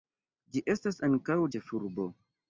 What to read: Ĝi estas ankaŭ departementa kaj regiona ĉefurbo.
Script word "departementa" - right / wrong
wrong